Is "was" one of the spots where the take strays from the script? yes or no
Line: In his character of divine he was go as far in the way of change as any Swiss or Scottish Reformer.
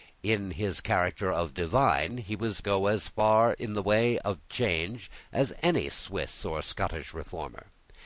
no